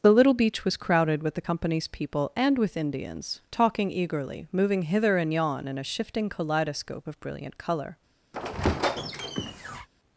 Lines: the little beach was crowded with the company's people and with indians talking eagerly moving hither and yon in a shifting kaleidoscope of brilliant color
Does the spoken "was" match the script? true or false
true